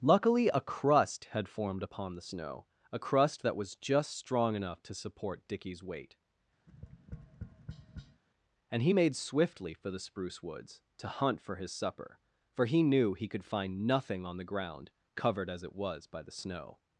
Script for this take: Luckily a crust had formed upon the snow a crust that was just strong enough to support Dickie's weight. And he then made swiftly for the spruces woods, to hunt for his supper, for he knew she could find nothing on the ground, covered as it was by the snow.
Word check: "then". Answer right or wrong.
wrong